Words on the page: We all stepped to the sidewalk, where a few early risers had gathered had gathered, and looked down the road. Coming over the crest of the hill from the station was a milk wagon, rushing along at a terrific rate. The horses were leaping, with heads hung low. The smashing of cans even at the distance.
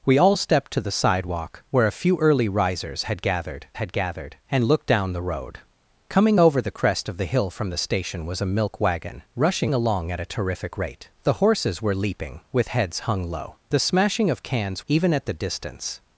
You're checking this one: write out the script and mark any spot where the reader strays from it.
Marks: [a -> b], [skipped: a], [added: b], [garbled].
We all stepped to the sidewalk, where a few early risers had gathered had gathered, and looked down the road. Coming over the crest of the hill from the station was a milk wagon, rushing along at a terrific rate. The horses were leaping, with heads hung low. The smashing of cans even at the distance.